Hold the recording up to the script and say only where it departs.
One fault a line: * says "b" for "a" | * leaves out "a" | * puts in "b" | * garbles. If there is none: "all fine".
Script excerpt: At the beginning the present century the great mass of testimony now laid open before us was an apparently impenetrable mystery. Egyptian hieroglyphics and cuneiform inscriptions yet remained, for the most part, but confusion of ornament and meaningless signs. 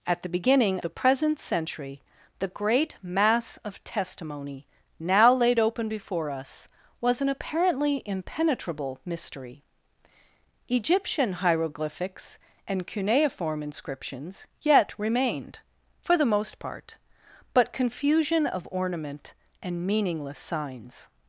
all fine